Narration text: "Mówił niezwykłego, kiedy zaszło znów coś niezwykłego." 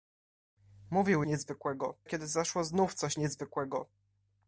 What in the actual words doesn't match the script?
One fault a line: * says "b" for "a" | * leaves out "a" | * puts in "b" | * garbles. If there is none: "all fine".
all fine